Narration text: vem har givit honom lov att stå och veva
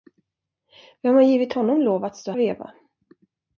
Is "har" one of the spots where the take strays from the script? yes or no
no